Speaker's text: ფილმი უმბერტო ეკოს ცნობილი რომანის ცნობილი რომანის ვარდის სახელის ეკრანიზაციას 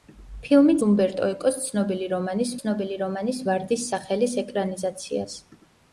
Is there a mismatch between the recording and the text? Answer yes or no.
no